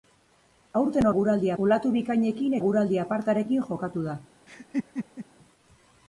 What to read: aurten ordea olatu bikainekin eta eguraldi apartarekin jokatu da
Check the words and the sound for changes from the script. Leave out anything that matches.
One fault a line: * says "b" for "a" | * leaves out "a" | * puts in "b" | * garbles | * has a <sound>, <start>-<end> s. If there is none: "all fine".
* says "eguraldi" for "ordea"
* leaves out "eta"
* has a laugh, 4.5-5.3 s